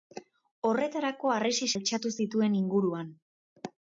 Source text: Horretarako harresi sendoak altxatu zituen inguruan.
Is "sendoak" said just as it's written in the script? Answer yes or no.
no